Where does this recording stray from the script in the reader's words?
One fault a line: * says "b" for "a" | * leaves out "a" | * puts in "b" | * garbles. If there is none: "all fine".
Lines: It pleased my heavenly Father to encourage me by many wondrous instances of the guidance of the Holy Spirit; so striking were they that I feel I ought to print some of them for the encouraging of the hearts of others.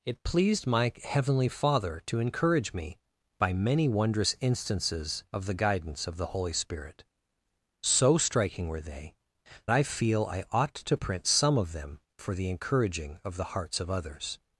* leaves out "that"